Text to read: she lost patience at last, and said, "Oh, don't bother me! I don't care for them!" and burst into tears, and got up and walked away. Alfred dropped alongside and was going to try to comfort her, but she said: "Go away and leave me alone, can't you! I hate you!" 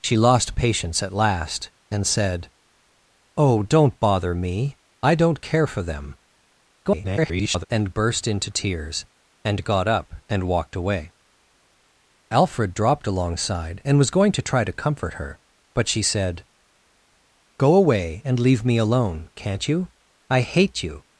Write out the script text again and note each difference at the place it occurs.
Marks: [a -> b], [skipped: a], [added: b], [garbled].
she lost patience at last, and said, "Oh, don't bother me! I don't care for them!" [garbled] and burst into tears, and got up and walked away. Alfred dropped alongside and was going to try to comfort her, but she said: "Go away and leave me alone, can't you! I hate you!"